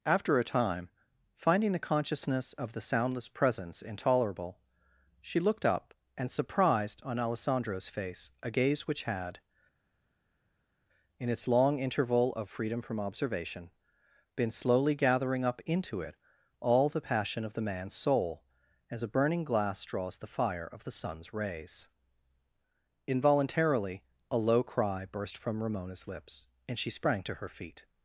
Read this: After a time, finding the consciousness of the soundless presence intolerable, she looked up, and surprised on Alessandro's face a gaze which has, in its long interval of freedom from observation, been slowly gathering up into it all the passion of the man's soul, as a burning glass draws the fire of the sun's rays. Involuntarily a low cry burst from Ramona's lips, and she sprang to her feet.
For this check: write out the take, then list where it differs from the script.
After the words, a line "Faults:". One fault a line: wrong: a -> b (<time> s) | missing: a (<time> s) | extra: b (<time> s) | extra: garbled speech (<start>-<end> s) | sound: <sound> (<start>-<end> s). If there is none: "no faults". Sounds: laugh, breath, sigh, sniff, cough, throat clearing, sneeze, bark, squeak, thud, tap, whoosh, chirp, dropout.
After a time, finding the consciousness of the soundless presence intolerable, she looked up, and surprised on Alessandro's face a gaze which had, in its long interval of freedom from observation, been slowly gathering up into it all the passion of the man's soul, as a burning glass draws the fire of the sun's rays. Involuntarily a low cry burst from Ramona's lips, and she sprang to her feet.
Faults:
wrong: has -> had (9.0 s)